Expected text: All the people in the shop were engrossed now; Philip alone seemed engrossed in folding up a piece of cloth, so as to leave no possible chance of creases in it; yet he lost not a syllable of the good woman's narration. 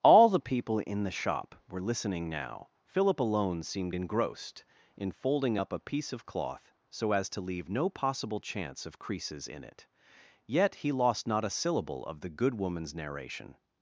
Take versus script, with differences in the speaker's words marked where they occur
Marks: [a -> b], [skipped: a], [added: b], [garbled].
All the people in the shop were [engrossed -> listening] now; Philip alone seemed engrossed in folding up a piece of cloth, so as to leave no possible chance of creases in it; yet he lost not a syllable of the good woman's narration.